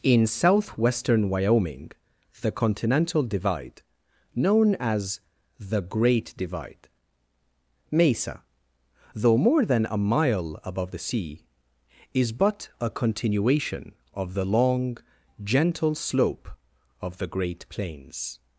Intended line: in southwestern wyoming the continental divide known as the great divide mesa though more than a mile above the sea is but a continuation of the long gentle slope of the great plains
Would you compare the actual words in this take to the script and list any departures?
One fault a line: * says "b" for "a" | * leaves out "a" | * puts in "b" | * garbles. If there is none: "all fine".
all fine